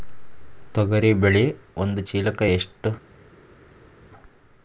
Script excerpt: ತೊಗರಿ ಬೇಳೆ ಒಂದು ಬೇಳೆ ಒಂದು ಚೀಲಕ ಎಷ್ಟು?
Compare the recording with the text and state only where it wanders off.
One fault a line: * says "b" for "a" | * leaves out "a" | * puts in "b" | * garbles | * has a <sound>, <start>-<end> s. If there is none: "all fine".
* leaves out "ಬೇಳೆ ಒಂದು"